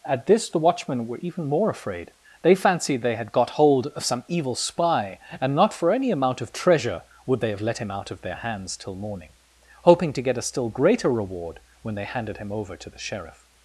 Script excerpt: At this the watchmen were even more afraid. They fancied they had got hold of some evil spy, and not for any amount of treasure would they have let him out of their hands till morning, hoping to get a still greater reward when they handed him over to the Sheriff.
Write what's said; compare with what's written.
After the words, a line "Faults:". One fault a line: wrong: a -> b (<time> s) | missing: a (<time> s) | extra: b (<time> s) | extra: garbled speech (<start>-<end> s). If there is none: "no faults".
At this the watchmen were even more afraid. They fancied they had got hold of some evil spy, and not for any amount of treasure would they have let him out of their hands till morning, hoping to get a still greater reward when they handed him over to the Sheriff.
Faults:
no faults